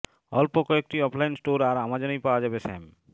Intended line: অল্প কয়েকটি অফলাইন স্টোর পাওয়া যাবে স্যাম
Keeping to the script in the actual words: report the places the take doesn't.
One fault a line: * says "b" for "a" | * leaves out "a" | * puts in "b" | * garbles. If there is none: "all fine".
* puts in "আর অ্যামাজনেই"